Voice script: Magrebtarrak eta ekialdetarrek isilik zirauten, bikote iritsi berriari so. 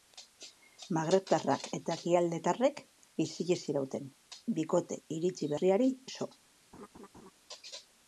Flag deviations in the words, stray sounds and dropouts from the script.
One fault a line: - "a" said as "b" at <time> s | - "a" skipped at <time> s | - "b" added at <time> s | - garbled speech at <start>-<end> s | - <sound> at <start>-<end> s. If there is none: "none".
- laugh at 6.7-7.3 s